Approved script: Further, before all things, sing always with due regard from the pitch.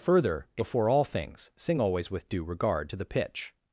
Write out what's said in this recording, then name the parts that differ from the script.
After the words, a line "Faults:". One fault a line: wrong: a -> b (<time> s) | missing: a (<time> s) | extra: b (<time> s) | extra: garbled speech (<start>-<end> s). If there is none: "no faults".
Further, before all things, sing always with due regard to the pitch.
Faults:
wrong: from -> to (2.9 s)